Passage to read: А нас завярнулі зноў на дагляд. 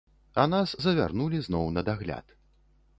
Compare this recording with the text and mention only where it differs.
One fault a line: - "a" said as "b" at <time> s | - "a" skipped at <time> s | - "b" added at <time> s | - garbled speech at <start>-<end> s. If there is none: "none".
none